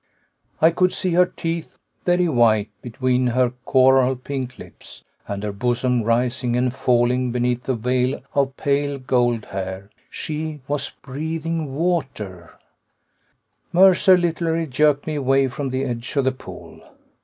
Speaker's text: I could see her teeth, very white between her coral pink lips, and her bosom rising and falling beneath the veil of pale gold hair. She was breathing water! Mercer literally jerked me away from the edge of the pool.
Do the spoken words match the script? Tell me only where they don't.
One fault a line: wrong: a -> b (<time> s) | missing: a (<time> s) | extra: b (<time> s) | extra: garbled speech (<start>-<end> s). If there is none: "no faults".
no faults